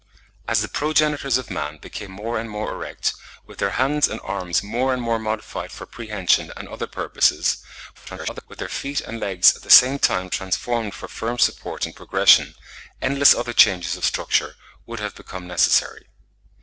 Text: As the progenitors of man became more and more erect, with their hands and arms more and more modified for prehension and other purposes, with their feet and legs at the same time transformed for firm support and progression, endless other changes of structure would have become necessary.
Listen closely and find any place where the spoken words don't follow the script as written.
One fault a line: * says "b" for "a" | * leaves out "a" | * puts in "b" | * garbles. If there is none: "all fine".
* garbles